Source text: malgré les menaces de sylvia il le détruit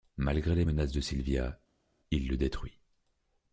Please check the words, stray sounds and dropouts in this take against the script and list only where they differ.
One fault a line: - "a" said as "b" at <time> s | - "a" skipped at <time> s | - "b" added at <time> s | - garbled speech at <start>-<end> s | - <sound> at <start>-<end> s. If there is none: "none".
none